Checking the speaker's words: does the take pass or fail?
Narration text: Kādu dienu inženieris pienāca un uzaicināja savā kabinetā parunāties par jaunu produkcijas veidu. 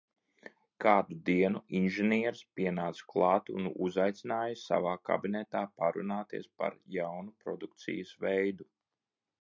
fail